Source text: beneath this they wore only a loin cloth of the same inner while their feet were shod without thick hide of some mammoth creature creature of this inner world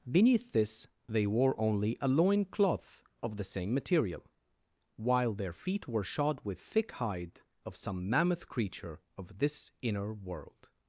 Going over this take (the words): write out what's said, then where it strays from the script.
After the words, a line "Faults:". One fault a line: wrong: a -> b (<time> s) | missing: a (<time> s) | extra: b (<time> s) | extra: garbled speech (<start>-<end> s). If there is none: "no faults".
beneath this they wore only a loin cloth of the same material while their feet were shod with thick hide of some mammoth creature of this inner world
Faults:
wrong: inner -> material (3.7 s)
wrong: without -> with (6.4 s)
missing: creature (9.0 s)